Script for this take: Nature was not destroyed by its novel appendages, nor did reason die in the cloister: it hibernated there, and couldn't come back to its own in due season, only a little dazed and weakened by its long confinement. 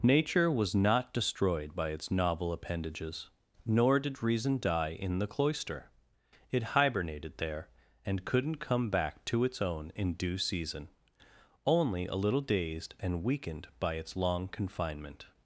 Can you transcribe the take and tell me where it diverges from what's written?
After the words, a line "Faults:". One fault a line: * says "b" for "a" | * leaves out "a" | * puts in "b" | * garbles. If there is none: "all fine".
Nature was not destroyed by its novel appendages, nor did reason die in the cloister: it hibernated there, and couldn't come back to its own in due season, only a little dazed and weakened by its long confinement.
Faults:
all fine